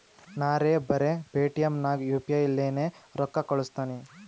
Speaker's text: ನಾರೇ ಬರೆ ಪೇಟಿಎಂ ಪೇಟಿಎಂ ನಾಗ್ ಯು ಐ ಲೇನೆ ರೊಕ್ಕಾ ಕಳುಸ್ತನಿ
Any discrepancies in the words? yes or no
yes